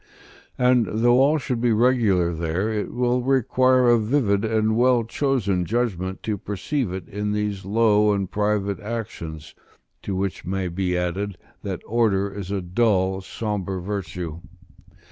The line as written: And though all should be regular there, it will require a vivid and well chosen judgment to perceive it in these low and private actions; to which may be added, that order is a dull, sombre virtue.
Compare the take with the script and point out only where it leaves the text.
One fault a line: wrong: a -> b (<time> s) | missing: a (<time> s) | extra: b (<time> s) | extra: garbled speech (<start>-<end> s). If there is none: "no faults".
no faults